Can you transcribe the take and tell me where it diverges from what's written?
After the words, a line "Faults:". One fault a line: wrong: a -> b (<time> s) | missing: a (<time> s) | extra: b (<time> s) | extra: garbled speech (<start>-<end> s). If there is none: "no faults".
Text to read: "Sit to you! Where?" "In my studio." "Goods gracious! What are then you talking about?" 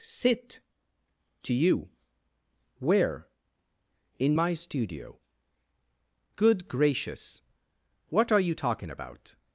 "Sit to you! Where?" "In my studio." "Good gracious! What are you talking about?"
Faults:
wrong: Goods -> Good (6.4 s)
missing: then (8.4 s)